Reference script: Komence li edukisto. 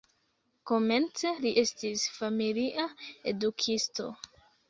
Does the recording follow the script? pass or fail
fail